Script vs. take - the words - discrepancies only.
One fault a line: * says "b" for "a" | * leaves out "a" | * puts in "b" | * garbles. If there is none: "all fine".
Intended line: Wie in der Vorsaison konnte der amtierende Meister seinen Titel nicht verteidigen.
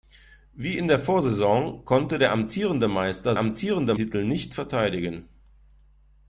* says "amtierende" for "seinen"